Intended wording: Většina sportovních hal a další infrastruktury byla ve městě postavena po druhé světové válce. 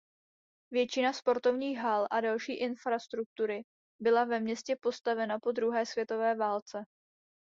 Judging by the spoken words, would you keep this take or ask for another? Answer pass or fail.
pass